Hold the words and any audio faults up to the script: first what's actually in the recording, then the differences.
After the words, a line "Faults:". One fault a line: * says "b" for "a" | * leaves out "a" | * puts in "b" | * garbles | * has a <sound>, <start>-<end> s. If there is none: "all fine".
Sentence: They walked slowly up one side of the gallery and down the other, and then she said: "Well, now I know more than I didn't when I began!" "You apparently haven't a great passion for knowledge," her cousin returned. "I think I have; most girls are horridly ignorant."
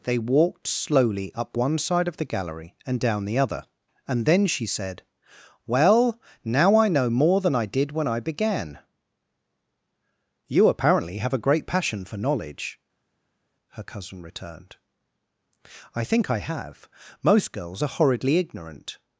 They walked slowly up one side of the gallery and down the other, and then she said: "Well, now I know more than I did when I began!" "You apparently have a great passion for knowledge," her cousin returned. "I think I have; most girls are horridly ignorant."
Faults:
* says "did" for "didn't"
* says "have" for "haven't"